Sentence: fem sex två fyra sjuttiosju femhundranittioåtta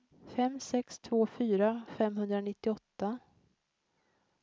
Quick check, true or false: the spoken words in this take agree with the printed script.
false